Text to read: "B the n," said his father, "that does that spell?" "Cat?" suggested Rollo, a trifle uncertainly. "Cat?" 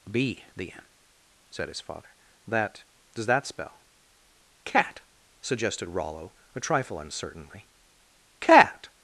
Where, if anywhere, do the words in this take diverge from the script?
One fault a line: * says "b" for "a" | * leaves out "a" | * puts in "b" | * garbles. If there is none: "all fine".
all fine